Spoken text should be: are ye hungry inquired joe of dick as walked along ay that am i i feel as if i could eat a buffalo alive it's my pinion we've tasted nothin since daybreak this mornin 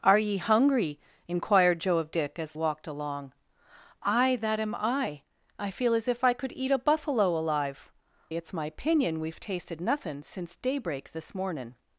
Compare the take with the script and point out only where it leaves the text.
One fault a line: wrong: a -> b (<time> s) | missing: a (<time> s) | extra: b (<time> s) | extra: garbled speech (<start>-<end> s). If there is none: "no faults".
no faults